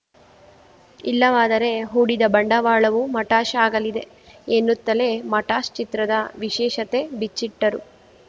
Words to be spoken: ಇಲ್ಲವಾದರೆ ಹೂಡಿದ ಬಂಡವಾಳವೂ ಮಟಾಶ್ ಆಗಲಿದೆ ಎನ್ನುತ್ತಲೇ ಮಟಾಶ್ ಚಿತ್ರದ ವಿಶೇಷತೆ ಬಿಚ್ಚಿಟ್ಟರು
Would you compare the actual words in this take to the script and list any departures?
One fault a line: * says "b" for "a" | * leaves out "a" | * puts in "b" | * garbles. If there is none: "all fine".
all fine